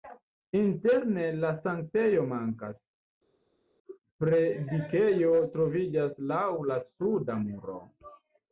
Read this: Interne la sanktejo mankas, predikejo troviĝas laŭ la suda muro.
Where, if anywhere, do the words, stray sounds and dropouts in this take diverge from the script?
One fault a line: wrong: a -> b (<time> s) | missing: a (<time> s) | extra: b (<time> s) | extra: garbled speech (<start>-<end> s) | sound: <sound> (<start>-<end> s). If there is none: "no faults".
no faults